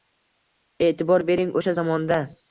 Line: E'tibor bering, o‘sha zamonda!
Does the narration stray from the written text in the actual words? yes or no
no